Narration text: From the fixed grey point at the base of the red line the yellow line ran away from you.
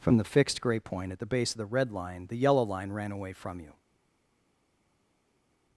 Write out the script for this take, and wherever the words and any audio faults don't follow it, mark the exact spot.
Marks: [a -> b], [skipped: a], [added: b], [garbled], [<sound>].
From the fixed grey point at the base of the red line the yellow line ran away from you.